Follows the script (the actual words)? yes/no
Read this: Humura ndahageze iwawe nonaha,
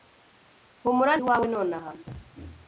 no